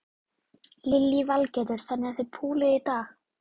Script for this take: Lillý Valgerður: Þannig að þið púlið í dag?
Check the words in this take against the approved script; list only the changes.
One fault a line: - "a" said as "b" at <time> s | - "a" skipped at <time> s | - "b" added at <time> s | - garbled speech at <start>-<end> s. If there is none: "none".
none